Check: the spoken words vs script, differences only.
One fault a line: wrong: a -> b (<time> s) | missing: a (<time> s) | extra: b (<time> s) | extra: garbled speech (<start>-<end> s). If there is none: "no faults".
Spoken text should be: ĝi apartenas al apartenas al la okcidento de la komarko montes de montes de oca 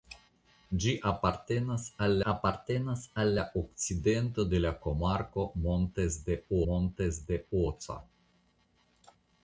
no faults